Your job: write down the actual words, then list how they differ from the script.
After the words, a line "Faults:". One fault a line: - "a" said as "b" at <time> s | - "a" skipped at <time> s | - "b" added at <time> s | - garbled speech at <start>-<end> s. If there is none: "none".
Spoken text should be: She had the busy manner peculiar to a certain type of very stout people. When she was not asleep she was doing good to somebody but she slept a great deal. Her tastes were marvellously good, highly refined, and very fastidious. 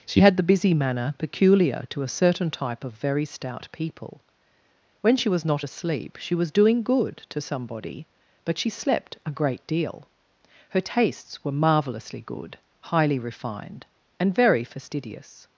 She had the busy manner peculiar to a certain type of very stout people. When she was not asleep she was doing good to somebody but she slept a great deal. Her tastes were marvellously good, highly refined, and very fastidious.
Faults:
none